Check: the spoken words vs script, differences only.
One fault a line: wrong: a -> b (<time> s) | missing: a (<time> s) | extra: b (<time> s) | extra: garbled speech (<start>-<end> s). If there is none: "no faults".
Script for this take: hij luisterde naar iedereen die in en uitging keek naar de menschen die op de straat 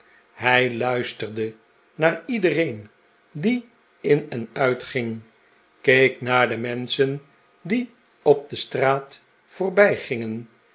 no faults